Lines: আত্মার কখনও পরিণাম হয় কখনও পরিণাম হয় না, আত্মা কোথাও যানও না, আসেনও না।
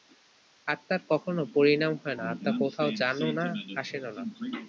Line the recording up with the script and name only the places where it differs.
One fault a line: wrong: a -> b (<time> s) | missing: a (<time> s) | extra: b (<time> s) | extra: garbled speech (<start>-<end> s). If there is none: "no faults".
missing: কখনও পরিণাম হয় (2.2 s)